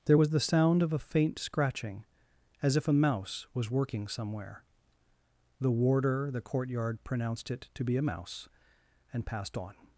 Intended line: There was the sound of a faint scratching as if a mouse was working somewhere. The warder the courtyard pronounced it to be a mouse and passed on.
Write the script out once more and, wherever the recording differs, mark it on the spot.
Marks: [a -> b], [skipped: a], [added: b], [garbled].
There was the sound of a faint scratching as if a mouse was working somewhere. The warder the courtyard pronounced it to be a mouse and passed on.